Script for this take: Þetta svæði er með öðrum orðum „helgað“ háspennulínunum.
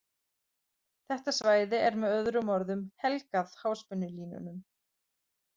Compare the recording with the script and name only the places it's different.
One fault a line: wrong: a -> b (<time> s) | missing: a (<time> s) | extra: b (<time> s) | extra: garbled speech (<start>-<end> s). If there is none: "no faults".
no faults